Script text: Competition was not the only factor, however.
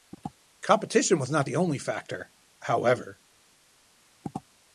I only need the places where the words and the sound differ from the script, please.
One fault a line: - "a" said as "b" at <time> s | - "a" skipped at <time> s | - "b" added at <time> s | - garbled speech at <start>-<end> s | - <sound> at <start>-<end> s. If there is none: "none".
none